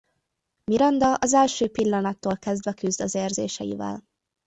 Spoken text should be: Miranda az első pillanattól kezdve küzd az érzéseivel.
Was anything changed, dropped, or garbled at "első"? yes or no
no